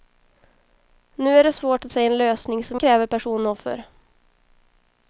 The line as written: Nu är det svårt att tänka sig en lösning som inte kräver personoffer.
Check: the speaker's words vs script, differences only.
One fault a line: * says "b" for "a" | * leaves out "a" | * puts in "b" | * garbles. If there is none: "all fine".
* leaves out "tänka"
* leaves out "inte"